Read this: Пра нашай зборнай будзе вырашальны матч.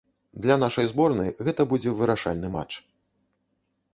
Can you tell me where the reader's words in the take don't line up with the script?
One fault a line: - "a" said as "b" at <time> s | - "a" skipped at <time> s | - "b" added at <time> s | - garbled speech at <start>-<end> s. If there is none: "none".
- "Пра" said as "Для" at 0.5 s
- "гэта" added at 1.5 s